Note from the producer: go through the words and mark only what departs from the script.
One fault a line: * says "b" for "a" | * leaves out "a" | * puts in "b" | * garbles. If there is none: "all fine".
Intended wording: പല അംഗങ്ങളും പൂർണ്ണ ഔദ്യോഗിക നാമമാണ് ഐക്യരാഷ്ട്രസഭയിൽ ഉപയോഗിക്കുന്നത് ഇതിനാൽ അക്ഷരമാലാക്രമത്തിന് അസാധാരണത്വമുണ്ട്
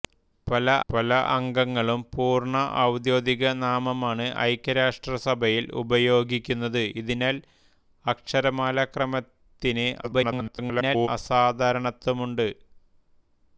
* puts in "പല"
* garbles